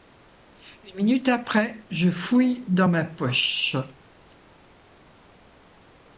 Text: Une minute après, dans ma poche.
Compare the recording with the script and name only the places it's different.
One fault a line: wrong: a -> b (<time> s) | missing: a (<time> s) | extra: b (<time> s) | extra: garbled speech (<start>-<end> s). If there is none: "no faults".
extra: je fouille (1.9 s)